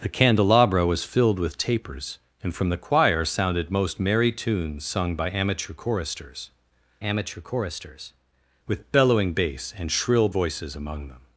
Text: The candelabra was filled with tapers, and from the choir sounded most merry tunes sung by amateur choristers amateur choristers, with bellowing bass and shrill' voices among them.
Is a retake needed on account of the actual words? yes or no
no